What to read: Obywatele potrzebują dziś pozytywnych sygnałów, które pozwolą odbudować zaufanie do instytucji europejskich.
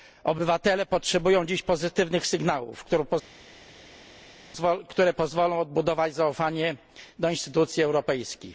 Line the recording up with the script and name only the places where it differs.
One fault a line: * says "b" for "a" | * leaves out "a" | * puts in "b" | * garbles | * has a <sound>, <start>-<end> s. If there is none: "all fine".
all fine